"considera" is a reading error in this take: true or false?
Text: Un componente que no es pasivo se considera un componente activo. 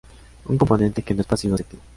true